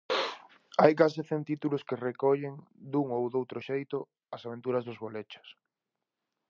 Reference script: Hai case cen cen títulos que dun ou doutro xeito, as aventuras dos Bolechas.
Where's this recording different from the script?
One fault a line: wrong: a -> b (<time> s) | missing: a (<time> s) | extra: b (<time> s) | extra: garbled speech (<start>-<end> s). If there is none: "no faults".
missing: cen (1.4 s)
extra: recollen (2.1 s)